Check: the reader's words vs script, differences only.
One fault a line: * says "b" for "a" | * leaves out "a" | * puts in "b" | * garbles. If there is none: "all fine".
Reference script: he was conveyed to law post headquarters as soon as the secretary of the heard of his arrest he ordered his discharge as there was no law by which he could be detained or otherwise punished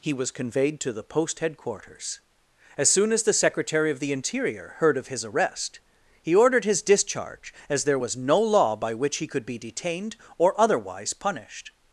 * says "the" for "law"
* puts in "interior"